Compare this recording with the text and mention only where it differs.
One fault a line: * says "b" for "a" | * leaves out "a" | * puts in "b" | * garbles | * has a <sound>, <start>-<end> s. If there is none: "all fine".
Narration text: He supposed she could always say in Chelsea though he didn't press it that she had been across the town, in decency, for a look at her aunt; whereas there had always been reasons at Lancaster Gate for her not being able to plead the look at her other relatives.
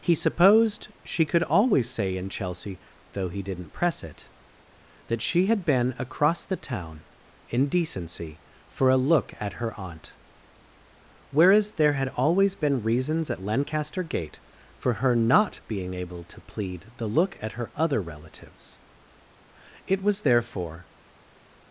* puts in "It was therefore"